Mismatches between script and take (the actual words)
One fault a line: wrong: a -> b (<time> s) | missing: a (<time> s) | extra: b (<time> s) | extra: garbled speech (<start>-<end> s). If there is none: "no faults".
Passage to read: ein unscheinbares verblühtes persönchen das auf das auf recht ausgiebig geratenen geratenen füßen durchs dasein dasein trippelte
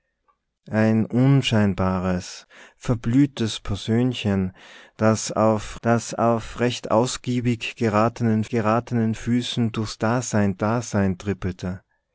no faults